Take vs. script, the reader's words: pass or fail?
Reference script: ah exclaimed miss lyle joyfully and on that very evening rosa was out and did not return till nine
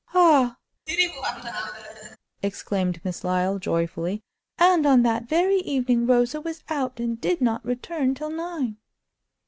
pass